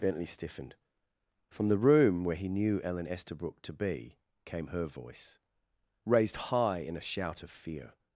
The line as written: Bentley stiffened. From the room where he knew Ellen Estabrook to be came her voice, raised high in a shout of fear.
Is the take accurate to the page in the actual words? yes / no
yes